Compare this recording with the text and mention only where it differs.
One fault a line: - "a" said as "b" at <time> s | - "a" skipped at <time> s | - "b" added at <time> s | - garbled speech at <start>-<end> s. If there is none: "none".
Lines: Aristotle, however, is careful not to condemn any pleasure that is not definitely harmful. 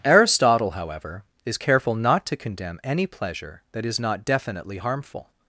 none